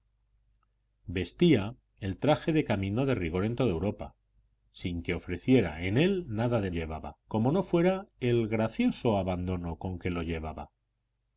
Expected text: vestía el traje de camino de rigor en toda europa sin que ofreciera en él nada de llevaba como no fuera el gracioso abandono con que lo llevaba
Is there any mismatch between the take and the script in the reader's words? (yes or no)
no